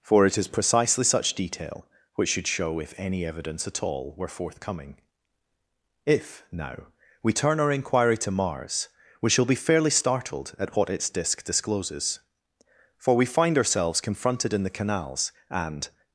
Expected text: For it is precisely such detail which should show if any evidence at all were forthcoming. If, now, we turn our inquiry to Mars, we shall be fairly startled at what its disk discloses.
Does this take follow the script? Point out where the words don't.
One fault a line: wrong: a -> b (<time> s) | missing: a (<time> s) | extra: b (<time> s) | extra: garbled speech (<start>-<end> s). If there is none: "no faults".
extra: For we find ourselves confronted in the canals and (13.0 s)